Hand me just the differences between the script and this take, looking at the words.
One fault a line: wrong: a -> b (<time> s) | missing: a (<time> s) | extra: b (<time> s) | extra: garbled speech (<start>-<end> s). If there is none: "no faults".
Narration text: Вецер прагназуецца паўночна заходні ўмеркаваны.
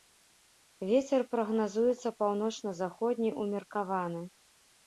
no faults